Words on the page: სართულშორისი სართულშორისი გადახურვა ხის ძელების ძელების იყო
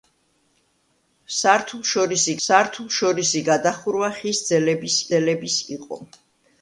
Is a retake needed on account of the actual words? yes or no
no